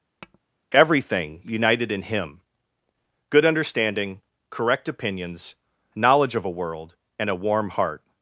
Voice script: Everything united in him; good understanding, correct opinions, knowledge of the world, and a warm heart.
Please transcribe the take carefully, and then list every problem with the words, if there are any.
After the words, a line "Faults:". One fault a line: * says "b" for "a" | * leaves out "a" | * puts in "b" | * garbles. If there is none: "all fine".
Everything united in him; good understanding, correct opinions, knowledge of a world, and a warm heart.
Faults:
* says "a" for "the"